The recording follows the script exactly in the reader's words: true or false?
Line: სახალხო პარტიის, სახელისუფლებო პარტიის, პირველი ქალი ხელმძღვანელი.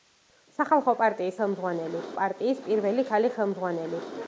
false